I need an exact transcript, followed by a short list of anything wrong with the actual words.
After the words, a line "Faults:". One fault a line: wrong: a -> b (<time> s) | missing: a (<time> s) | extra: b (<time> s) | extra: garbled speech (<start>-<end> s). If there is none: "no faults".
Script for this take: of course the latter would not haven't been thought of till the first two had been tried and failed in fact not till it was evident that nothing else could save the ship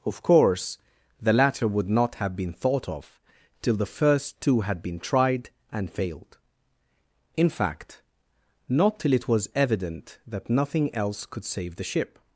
of course the latter would not have been thought of till the first two had been tried and failed in fact not till it was evident that nothing else could save the ship
Faults:
wrong: haven't -> have (2.1 s)